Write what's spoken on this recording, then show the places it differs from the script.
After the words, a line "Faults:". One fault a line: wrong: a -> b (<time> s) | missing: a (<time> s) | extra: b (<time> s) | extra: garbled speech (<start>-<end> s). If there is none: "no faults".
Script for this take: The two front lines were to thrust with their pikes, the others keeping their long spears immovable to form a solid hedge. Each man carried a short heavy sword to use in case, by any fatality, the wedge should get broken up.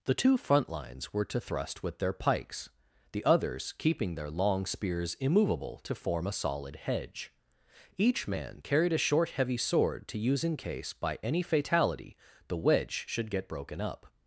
The two front lines were to thrust with their pikes, the others keeping their long spears immovable to form a solid hedge. Each man carried a short heavy sword to use in case, by any fatality, the wedge should get broken up.
Faults:
no faults